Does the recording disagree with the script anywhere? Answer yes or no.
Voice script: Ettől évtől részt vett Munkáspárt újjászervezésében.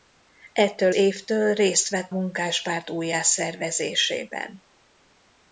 no